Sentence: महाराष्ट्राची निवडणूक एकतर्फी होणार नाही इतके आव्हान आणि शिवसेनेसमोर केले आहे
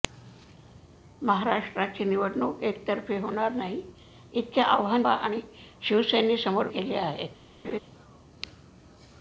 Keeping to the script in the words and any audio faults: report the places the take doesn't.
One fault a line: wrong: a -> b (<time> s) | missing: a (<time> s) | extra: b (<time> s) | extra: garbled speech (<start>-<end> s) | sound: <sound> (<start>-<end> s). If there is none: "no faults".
sound: laugh (7.6-7.8 s)